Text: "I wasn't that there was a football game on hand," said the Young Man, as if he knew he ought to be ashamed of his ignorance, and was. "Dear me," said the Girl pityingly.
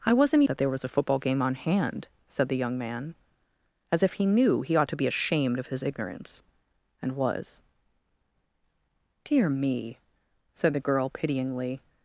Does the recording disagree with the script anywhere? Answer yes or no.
no